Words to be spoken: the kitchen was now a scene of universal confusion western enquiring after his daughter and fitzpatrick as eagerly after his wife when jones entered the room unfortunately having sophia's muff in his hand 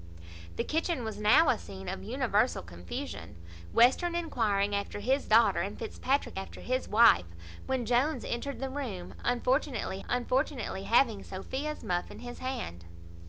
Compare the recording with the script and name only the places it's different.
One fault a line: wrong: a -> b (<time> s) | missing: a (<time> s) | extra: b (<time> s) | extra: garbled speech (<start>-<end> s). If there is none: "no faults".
missing: as eagerly (6.4 s)
extra: unfortunately (10.1 s)